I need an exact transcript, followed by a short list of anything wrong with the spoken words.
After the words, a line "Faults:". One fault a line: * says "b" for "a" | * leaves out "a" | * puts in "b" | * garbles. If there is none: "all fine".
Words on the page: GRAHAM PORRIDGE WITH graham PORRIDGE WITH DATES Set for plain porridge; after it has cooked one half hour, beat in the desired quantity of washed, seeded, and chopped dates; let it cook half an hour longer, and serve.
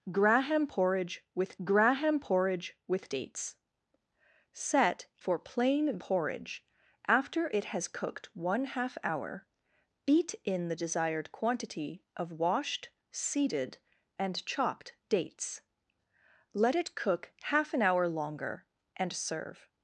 GRAHAM PORRIDGE WITH graham PORRIDGE WITH DATES Set for plain porridge; after it has cooked one half hour, beat in the desired quantity of washed, seeded, and chopped dates; let it cook half an hour longer, and serve.
Faults:
all fine